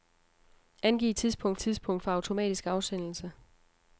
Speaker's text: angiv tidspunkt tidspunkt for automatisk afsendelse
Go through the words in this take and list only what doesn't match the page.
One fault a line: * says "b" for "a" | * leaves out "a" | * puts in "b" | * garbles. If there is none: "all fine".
all fine